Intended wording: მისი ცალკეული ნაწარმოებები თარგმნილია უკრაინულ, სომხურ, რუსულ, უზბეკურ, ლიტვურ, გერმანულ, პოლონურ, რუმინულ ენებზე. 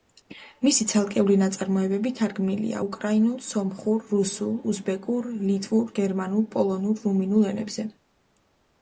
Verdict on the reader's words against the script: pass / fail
pass